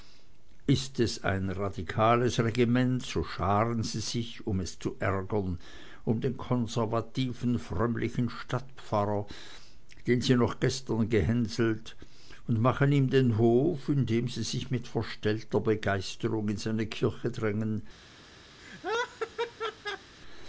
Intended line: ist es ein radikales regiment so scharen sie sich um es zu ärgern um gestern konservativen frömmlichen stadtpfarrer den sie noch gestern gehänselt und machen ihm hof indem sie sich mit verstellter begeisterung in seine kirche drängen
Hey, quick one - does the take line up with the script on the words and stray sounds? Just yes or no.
no